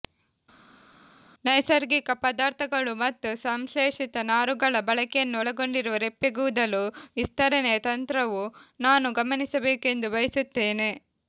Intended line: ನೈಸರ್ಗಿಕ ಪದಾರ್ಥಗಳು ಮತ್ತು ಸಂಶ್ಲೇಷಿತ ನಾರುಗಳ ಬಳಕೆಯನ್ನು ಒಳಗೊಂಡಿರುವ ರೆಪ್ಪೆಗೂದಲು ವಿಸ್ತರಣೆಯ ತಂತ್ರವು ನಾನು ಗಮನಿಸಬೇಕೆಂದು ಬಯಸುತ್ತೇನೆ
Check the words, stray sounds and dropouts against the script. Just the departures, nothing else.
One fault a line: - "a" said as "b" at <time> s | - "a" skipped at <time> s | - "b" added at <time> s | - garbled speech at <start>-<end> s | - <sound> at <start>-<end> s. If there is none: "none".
none